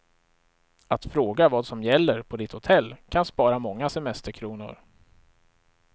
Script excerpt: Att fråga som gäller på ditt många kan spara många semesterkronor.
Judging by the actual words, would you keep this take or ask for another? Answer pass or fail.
fail